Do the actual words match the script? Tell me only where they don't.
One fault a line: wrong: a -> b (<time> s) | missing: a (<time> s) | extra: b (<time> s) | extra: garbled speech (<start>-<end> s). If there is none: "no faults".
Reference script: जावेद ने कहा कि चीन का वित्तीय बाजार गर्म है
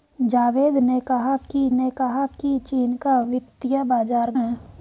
extra: ने कहा कि (1.7 s)
missing: गर्म (4.3 s)